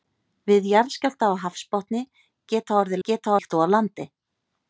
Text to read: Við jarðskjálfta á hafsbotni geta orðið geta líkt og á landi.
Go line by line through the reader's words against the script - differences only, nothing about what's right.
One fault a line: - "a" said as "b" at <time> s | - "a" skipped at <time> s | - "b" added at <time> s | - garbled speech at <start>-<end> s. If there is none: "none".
none